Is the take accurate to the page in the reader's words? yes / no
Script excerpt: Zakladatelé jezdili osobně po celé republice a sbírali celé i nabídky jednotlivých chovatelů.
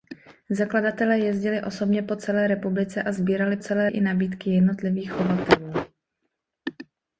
yes